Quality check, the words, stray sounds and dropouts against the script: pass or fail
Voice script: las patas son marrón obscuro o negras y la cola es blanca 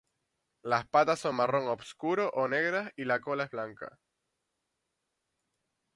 pass